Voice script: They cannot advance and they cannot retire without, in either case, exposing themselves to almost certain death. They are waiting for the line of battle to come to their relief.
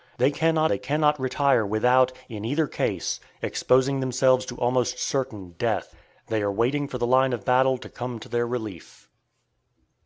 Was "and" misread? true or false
true